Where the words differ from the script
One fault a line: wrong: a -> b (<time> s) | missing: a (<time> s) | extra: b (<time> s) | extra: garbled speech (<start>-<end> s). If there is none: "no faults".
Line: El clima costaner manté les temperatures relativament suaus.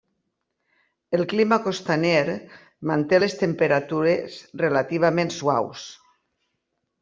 no faults